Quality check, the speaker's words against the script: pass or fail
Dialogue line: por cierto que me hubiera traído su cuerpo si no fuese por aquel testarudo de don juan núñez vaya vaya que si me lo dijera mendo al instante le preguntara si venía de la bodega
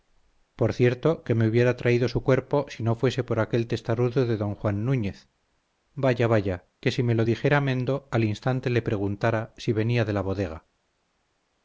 pass